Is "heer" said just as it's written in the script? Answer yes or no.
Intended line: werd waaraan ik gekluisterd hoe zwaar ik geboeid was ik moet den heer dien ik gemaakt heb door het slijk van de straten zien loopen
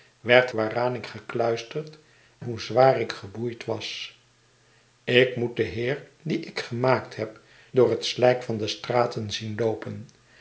yes